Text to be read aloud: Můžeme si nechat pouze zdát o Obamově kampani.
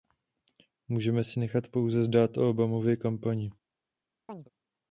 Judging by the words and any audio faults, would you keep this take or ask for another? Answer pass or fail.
fail